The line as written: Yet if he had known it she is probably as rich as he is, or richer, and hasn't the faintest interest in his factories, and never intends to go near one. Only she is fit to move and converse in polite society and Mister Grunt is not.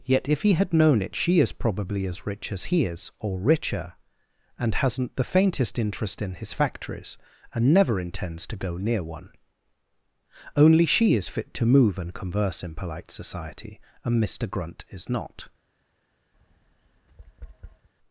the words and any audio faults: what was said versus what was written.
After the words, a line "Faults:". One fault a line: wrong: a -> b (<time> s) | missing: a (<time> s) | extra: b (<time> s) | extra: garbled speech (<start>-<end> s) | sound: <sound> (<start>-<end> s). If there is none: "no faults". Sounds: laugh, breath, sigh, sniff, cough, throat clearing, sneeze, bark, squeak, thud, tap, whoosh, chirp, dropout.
Yet if he had known it she is probably as rich as he is, or richer, and hasn't the faintest interest in his factories, and never intends to go near one. Only she is fit to move and converse in polite society and Mister Grunt is not.
Faults:
sound: tap (16.3-17.9 s)